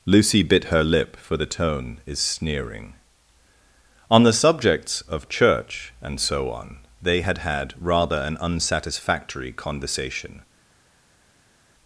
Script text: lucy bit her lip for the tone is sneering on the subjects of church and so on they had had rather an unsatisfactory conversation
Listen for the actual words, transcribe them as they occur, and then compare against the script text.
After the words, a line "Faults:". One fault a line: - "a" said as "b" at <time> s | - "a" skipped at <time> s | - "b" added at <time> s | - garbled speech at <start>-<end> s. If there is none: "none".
lucy bit her lip for the tone is sneering on the subjects of church and so on they had had rather an unsatisfactory conversation
Faults:
none